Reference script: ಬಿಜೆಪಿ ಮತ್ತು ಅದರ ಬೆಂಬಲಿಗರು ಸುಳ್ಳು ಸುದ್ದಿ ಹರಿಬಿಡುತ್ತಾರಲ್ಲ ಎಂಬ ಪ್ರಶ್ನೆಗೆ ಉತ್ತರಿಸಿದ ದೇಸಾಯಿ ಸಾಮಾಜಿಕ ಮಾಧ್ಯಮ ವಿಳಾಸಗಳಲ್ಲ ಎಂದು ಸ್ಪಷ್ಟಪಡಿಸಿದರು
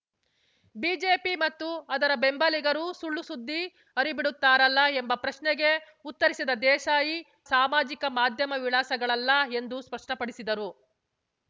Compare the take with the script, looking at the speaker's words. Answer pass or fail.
pass